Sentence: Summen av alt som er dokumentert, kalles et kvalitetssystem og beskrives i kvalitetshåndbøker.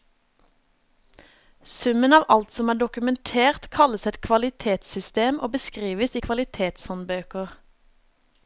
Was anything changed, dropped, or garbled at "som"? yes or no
no